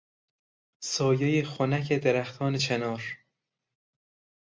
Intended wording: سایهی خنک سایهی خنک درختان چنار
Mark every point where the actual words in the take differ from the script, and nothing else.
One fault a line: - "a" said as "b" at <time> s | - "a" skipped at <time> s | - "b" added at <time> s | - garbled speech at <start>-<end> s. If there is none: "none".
- "سایهی خنک" skipped at 1.9 s